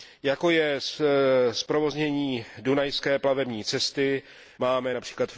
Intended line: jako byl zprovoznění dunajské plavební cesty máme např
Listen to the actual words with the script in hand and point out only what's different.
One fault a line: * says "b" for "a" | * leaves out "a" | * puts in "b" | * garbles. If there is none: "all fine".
* says "je" for "byl"